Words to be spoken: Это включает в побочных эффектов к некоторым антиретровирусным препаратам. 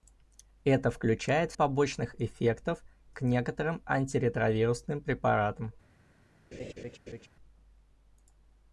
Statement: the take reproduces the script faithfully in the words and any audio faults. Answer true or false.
false